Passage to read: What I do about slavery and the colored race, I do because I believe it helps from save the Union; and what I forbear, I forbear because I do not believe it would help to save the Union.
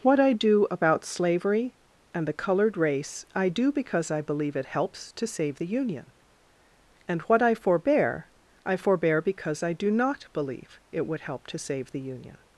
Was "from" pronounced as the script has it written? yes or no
no